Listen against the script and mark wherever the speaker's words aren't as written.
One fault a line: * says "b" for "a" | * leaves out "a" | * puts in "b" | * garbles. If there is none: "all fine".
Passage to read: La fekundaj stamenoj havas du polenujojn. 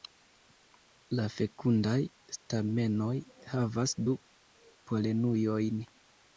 all fine